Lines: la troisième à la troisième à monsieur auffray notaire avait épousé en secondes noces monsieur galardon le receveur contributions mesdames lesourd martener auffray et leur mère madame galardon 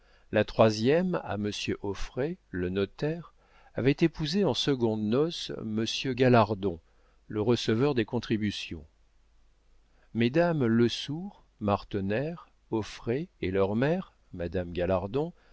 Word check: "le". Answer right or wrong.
right